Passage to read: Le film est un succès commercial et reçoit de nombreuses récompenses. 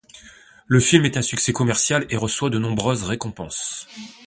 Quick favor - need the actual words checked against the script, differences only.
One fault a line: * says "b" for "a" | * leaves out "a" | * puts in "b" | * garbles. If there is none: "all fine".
all fine